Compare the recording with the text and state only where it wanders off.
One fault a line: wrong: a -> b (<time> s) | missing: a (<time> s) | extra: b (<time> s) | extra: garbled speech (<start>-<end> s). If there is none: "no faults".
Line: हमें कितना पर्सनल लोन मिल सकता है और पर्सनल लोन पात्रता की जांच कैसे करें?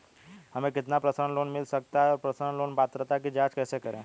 no faults